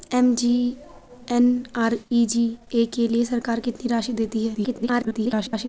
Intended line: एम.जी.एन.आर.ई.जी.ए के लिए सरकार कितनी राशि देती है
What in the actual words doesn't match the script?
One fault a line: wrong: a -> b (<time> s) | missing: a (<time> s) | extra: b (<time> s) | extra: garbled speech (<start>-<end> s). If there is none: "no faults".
extra: garbled speech (4.5-5.7 s)